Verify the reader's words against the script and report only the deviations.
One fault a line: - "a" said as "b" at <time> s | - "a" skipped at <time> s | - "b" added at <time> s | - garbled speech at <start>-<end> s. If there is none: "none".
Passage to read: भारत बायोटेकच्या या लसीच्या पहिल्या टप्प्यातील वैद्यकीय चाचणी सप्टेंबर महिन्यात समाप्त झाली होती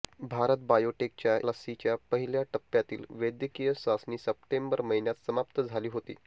- "या" skipped at 1.4 s